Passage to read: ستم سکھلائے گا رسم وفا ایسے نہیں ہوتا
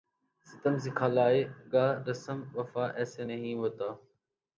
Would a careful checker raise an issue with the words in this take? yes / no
no